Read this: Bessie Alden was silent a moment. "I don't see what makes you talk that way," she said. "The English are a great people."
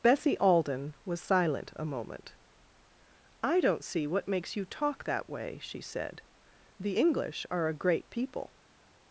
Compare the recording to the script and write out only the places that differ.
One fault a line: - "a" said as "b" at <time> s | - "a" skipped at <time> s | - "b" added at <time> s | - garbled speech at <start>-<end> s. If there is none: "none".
none